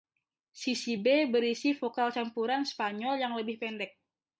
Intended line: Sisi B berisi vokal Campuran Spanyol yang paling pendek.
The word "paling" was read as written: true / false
false